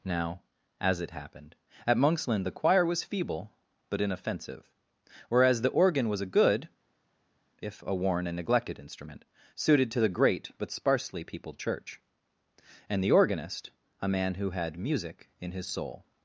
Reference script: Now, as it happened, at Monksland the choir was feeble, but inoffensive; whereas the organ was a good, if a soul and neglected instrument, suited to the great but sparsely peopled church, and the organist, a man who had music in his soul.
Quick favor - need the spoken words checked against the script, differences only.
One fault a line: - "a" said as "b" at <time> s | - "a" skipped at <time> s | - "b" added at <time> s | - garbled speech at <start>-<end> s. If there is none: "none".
- "soul" said as "worn" at 8.0 s